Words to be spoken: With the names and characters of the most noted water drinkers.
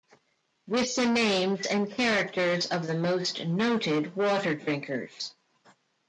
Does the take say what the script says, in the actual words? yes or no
yes